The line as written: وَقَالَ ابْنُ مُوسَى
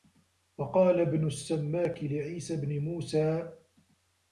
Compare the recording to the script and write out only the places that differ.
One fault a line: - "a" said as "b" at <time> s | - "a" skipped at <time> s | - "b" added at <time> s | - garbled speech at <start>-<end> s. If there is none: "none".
- "السَّمَّاكِ لِعِيسَى بْنِ" added at 1.3 s